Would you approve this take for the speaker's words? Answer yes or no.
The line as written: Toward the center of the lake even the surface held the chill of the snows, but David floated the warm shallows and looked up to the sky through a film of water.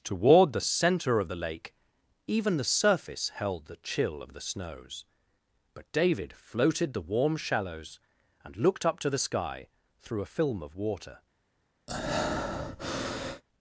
yes